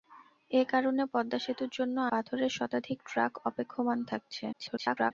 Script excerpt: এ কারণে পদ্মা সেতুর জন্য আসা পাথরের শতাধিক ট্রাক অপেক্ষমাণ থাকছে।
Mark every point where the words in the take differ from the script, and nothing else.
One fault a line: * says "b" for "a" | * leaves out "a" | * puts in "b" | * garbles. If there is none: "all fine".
* leaves out "আসা"
* garbles